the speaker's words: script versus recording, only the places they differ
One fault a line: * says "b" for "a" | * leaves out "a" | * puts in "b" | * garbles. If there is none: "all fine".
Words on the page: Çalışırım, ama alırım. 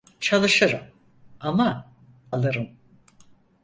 all fine